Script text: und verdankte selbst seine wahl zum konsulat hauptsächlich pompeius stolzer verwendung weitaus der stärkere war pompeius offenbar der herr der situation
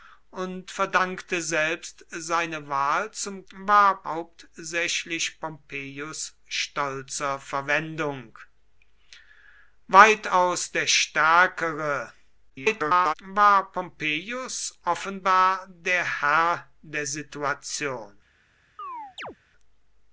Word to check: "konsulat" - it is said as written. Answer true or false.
false